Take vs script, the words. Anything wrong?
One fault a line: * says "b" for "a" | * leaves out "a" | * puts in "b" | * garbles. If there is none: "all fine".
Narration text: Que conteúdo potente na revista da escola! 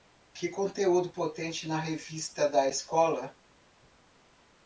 all fine